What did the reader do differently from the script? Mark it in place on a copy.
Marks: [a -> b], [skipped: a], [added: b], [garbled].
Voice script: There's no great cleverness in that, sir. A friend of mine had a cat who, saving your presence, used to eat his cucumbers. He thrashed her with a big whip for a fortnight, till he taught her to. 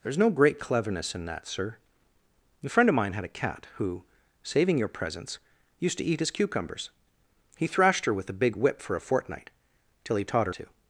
There's no great cleverness in that, sir. A friend of mine had a cat who, saving your presence, used to eat his cucumbers. He thrashed her with a big whip for a fortnight, till he taught her to.